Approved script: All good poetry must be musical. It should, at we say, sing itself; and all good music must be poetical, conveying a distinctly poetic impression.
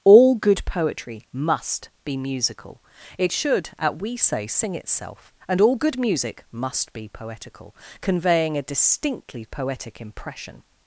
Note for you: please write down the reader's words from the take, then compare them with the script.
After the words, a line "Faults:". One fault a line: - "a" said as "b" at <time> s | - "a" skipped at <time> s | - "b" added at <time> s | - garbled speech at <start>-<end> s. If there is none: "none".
All good poetry must be musical. It should, at we say, sing itself; and all good music must be poetical, conveying a distinctly poetic impression.
Faults:
none